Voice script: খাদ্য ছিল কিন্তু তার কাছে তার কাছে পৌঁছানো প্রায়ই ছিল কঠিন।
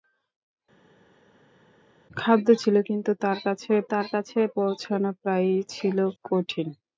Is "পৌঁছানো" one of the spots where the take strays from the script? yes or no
no